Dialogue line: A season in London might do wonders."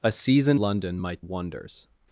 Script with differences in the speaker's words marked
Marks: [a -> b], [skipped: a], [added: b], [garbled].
A season [skipped: in] London might [skipped: do] wonders."